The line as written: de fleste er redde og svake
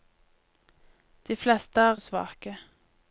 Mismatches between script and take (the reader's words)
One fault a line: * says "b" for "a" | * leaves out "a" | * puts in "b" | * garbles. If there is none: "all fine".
* leaves out "redde"